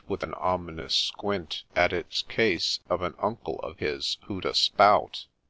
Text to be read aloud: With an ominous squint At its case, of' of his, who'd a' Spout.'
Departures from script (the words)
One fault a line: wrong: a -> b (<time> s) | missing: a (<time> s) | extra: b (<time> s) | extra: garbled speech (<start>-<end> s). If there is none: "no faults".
extra: an Uncle (3.0 s)